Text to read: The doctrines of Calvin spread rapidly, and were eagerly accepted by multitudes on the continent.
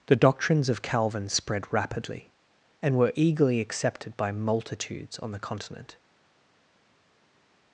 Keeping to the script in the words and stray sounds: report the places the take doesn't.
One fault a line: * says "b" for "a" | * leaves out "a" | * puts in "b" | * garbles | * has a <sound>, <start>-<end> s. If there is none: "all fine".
all fine